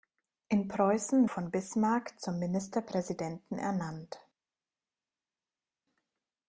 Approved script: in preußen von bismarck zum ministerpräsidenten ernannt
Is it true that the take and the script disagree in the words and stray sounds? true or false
false